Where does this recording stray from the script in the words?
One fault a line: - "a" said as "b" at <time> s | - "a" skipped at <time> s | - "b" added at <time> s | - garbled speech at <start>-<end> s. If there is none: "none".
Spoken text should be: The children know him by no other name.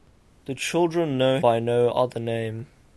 - "him" skipped at 1.4 s